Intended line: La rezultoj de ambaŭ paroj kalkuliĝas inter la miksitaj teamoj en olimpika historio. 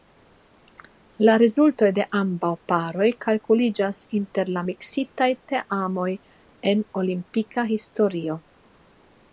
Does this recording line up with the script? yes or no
yes